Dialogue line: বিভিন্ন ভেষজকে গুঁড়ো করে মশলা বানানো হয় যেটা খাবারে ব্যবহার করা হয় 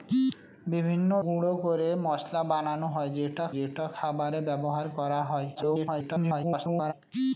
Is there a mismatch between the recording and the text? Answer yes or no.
yes